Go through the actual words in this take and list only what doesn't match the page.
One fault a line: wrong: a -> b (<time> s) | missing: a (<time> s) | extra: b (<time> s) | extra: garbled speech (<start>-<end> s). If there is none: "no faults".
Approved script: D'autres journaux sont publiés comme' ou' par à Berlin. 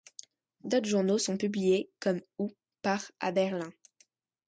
no faults